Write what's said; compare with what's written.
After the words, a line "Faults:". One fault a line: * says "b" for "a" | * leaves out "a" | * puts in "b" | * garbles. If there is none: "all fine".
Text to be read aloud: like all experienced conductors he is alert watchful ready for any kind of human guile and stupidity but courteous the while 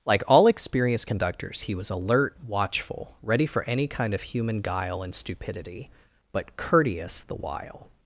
like all experienced conductors he was alert watchful ready for any kind of human guile and stupidity but courteous the while
Faults:
* says "was" for "is"